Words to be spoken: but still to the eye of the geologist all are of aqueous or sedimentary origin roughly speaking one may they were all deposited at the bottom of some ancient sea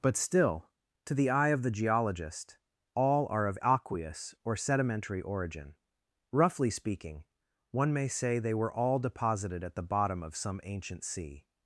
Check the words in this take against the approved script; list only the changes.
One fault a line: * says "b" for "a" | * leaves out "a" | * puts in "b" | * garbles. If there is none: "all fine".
* puts in "say"